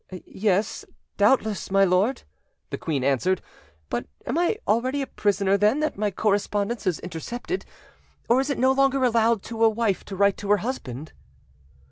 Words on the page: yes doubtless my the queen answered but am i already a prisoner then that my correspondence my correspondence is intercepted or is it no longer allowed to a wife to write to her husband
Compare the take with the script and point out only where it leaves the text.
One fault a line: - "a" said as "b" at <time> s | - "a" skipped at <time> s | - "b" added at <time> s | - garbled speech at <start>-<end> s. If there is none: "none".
- "lord" added at 1.9 s
- "my correspondence" skipped at 6.9 s